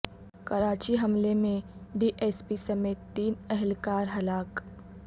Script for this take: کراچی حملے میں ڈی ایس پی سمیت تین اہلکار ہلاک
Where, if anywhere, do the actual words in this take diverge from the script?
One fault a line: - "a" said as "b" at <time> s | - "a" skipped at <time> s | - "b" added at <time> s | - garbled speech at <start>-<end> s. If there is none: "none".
none